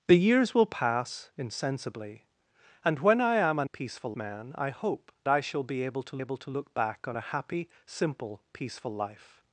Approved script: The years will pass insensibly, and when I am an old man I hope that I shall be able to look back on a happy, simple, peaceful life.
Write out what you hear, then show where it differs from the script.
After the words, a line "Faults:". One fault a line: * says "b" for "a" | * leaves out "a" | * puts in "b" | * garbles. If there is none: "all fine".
The years will pass insensibly, and when I am an peaceful man I hope I shall be able to able to look back on a happy, simple, peaceful life.
Faults:
* says "peaceful" for "old"
* leaves out "that"
* puts in "able to"